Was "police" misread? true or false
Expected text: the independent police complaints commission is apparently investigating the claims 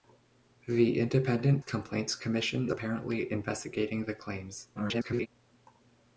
true